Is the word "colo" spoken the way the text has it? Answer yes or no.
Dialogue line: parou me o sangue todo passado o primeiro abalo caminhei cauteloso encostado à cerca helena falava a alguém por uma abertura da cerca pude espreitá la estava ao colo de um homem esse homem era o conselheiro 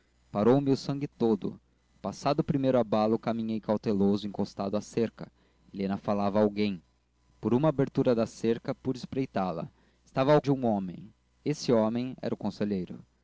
no